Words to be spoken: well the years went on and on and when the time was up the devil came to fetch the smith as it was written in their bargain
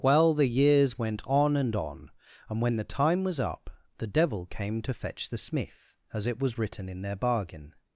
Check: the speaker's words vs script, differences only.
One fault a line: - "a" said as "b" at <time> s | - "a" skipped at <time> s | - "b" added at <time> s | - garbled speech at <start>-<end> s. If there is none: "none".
none